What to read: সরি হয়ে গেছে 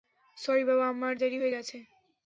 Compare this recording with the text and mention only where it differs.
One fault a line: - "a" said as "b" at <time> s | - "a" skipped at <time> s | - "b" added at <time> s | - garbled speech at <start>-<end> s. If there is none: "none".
- "বাবা আমার দেরি" added at 0.7 s